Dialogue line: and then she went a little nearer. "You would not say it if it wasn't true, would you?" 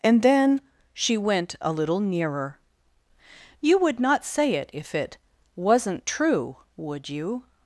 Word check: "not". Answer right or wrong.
right